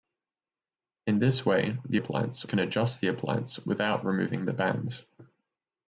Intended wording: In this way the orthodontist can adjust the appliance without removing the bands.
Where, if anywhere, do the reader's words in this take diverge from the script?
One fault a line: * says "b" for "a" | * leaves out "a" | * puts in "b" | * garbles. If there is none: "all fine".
* says "appliance" for "orthodontist"